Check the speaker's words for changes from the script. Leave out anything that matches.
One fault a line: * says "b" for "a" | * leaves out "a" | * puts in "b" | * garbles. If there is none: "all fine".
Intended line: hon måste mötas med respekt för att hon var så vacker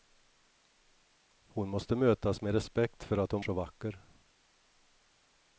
* leaves out "var"